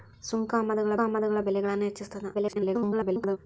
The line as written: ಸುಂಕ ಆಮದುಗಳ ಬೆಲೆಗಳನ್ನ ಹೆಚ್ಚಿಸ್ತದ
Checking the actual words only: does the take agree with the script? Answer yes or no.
no